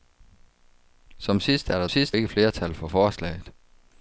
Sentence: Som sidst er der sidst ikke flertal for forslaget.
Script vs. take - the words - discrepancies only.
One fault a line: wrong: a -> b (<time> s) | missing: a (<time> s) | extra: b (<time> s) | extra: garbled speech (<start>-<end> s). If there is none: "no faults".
no faults